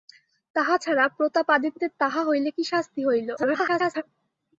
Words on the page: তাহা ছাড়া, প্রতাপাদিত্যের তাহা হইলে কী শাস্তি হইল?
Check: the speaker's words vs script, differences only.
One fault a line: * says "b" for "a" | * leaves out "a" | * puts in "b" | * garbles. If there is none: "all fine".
* garbles